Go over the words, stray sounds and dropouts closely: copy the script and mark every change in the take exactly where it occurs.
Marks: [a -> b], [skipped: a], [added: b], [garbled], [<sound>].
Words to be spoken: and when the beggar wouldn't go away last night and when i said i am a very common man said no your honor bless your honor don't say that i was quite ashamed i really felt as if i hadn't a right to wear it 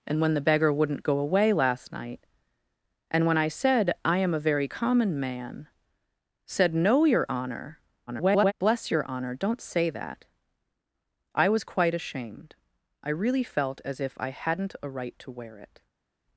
and when the beggar wouldn't go away last night and when i said i am a very common man said no your honor [garbled] bless your honor don't say that i was quite ashamed i really felt as if i hadn't a right to wear it